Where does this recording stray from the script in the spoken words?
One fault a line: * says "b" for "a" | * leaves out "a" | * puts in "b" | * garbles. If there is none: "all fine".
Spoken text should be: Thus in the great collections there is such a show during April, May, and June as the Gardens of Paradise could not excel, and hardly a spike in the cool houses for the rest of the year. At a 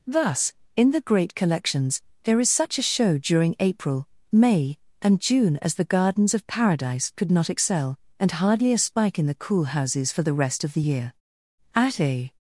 all fine